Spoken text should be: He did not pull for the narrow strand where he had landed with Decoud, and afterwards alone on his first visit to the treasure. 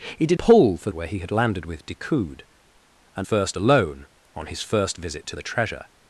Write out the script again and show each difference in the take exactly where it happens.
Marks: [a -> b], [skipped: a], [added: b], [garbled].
He did [skipped: not] pull for [skipped: the narrow strand] where he had landed with Decoud, and [afterwards -> first] alone on his first visit to the treasure.